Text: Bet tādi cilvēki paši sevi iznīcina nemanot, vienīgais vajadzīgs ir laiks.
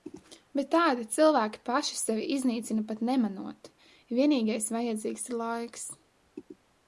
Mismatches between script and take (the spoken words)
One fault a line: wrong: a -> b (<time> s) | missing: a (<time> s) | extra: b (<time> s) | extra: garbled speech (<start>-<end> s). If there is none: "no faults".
extra: pat (2.9 s)